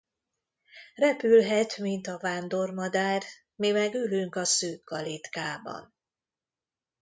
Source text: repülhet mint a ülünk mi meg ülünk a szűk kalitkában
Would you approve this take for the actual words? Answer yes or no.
no